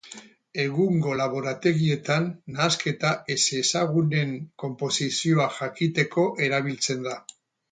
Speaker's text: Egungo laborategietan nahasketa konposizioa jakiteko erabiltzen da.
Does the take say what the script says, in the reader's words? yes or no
no